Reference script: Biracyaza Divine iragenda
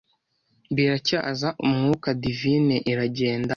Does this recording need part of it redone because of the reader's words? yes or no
yes